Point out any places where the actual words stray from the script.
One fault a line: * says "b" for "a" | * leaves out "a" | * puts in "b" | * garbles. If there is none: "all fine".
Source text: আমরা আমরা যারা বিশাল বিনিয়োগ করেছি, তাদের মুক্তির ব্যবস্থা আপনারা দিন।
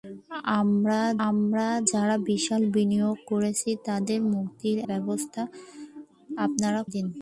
all fine